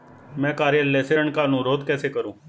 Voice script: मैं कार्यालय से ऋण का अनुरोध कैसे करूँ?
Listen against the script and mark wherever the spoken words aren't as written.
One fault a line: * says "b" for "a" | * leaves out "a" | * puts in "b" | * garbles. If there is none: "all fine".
all fine